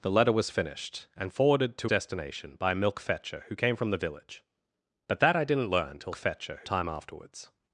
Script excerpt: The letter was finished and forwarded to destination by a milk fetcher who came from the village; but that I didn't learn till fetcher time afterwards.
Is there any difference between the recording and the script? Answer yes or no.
no